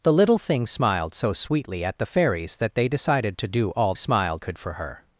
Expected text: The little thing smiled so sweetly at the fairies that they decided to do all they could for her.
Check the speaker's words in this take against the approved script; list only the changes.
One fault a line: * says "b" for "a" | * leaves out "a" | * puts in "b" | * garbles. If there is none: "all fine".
* says "smiled" for "they"